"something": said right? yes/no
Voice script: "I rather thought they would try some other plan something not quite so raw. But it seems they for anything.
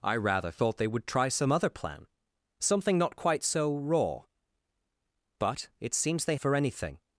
yes